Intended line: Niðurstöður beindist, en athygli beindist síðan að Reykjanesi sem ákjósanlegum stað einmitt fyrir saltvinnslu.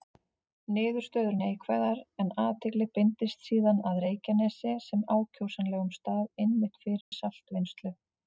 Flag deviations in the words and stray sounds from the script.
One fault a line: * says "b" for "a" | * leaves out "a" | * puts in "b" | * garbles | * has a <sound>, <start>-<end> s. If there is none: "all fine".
* says "neikvæðar" for "beindist"
* has a dropout, 7.0-7.1 s